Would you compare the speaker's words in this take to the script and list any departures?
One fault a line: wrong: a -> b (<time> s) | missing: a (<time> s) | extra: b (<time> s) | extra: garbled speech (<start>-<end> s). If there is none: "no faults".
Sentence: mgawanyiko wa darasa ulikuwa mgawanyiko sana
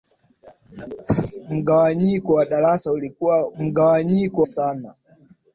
no faults